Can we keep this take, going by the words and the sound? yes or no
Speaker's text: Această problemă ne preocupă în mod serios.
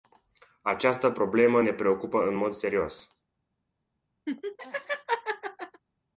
no